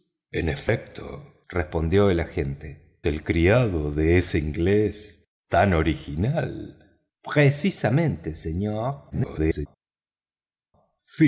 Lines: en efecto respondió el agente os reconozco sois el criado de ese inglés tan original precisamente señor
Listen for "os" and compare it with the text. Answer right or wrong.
wrong